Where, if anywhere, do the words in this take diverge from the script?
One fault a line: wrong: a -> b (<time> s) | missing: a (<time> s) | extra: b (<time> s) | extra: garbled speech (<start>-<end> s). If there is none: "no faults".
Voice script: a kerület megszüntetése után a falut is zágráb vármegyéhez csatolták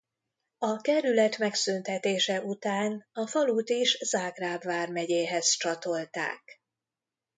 no faults